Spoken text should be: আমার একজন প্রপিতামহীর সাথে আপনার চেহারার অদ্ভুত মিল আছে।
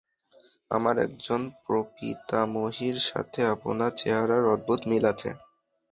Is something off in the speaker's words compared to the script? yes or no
no